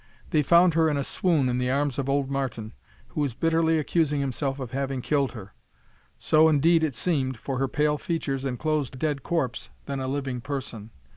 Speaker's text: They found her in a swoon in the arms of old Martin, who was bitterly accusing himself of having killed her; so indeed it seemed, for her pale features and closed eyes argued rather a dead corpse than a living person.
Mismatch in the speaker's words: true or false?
true